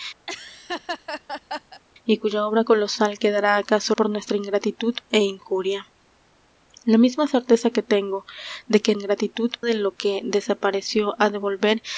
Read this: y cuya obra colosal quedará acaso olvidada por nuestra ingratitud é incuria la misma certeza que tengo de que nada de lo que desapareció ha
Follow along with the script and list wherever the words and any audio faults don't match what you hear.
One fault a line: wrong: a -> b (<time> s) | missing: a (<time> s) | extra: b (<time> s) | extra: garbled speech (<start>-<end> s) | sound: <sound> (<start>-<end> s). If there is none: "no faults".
sound: laugh (0.3-1.8 s)
missing: olvidada (3.9 s)
wrong: nada -> ingratitud (8.9 s)